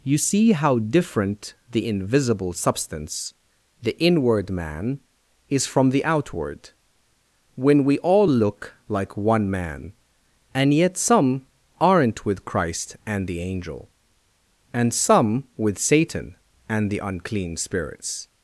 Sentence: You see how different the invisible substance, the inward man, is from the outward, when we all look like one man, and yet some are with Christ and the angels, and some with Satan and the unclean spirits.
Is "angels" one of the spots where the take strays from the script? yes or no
yes